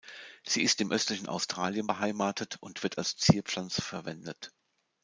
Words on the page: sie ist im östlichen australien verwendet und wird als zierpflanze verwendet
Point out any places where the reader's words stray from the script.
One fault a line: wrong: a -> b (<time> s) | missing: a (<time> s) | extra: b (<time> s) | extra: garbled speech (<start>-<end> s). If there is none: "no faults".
wrong: verwendet -> beheimatet (1.8 s)